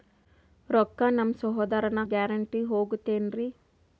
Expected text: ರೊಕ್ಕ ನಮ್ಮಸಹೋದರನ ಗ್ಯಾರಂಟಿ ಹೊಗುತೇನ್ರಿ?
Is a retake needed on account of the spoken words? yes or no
no